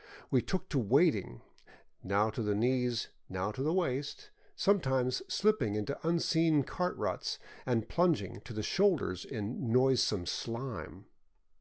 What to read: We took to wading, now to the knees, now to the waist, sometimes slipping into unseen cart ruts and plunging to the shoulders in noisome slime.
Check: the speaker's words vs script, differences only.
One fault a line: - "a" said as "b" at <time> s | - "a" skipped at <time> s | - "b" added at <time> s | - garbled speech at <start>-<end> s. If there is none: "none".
none